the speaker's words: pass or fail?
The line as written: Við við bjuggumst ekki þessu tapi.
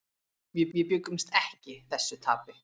pass